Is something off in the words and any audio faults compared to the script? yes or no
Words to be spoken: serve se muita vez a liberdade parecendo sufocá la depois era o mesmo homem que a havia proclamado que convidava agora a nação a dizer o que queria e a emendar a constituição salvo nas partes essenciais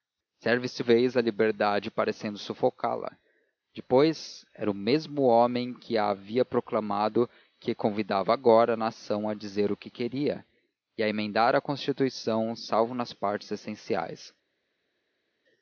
yes